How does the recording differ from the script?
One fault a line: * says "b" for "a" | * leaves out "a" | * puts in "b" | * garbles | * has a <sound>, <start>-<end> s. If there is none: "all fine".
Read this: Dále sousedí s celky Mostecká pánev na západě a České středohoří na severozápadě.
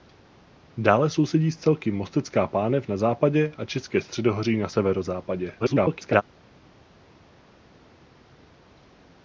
* garbles